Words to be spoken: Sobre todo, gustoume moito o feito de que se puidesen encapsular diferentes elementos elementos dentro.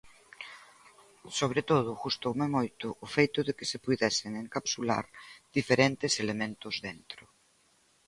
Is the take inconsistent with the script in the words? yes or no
yes